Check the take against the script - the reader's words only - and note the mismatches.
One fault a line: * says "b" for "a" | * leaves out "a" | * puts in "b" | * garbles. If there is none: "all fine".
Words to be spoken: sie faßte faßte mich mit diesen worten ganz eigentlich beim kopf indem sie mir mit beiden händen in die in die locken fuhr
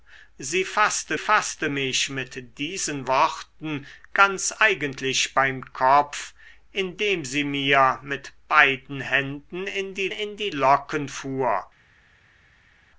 all fine